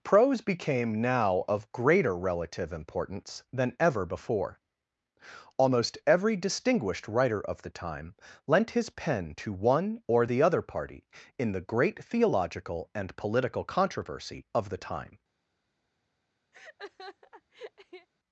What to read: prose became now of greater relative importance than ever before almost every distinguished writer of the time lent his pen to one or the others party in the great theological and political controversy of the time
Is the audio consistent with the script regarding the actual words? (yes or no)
no